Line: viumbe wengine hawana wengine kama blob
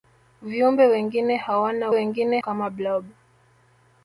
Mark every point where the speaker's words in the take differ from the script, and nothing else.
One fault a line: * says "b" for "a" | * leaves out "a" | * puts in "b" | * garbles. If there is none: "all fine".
all fine